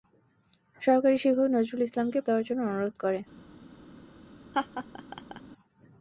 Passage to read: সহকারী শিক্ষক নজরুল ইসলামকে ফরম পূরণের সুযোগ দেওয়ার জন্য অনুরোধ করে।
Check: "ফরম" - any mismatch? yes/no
yes